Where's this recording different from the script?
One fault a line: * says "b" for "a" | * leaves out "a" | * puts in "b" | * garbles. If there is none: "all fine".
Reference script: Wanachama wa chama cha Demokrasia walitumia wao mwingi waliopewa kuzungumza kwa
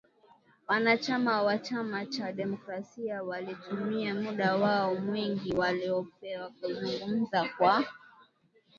* puts in "muda"